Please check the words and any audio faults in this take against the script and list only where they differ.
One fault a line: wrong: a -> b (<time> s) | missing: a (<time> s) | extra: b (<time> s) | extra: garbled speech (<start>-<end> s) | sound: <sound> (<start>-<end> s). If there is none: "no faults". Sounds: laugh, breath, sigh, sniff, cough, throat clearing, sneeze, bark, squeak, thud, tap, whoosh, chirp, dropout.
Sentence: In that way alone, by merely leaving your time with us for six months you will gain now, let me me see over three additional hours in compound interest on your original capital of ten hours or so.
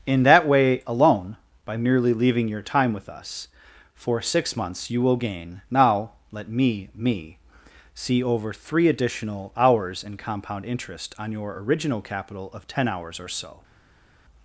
no faults